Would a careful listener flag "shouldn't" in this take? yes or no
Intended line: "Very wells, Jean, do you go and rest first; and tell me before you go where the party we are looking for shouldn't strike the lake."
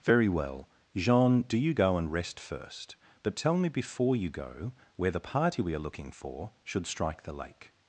yes